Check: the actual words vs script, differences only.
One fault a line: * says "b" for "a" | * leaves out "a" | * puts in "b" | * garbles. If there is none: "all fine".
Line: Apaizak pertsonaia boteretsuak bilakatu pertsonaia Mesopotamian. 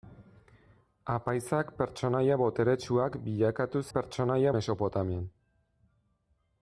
all fine